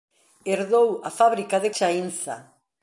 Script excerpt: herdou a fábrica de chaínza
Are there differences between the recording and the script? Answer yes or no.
no